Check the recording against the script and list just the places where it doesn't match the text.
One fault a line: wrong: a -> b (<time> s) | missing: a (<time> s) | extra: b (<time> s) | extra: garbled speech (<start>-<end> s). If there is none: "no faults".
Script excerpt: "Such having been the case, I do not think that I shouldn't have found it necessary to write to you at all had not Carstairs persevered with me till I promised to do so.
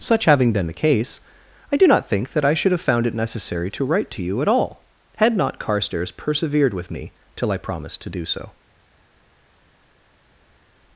wrong: shouldn't -> should (2.5 s)